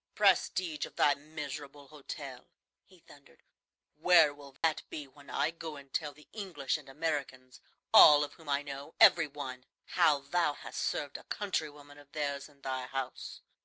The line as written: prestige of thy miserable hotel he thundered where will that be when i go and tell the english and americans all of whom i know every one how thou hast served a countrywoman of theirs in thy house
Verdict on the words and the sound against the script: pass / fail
fail